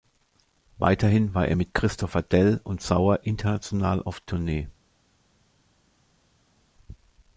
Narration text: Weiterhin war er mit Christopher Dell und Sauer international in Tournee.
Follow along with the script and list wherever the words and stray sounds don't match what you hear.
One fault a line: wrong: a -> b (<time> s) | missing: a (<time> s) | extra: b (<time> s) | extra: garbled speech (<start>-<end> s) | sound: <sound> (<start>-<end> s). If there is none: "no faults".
wrong: in -> auf (4.0 s)